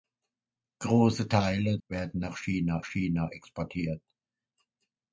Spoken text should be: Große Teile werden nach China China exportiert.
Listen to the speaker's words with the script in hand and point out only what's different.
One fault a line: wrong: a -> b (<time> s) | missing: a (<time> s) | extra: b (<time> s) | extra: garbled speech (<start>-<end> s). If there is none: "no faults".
no faults